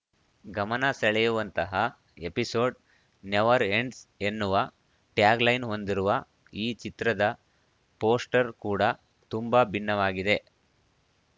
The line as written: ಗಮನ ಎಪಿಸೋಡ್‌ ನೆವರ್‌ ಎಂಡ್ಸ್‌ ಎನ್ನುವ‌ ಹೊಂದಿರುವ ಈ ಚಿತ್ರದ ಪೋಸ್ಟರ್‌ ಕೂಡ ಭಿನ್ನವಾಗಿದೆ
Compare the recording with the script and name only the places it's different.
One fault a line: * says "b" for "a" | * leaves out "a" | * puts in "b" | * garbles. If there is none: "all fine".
* puts in "ಸೆಳೆಯುವಂತಹ"
* puts in "ಟ್ಯಾಗ್‌ಲೈನ್"
* puts in "ತುಂಬಾ"